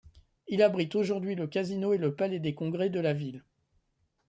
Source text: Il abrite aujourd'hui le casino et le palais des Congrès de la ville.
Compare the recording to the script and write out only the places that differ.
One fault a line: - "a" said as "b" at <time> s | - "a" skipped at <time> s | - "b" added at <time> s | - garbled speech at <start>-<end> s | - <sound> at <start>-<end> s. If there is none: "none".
none